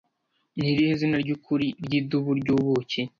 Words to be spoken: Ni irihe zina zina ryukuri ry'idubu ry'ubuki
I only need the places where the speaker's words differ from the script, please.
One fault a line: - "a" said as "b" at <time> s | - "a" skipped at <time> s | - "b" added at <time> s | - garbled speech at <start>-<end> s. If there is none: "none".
- "zina" skipped at 1.2 s